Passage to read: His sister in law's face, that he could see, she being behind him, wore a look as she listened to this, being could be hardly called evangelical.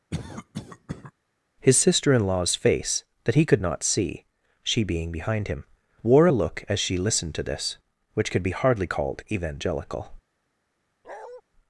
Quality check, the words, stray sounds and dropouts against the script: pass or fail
fail